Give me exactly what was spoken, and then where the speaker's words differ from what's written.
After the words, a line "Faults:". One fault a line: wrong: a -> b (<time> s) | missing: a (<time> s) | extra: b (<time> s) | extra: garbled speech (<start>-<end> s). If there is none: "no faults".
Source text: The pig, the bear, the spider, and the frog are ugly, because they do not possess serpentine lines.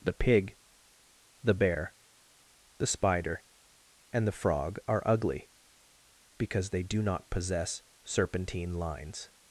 The pig, the bear, the spider, and the frog are ugly, because they do not possess serpentine lines.
Faults:
no faults